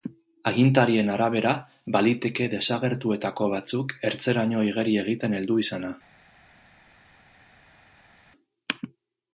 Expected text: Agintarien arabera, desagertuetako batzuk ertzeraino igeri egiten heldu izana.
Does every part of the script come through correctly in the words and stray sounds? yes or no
no